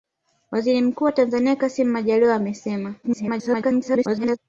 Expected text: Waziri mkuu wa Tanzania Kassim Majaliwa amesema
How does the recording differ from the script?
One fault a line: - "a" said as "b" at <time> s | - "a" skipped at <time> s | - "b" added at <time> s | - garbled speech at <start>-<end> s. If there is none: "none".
- garbled speech at 3.0-4.4 s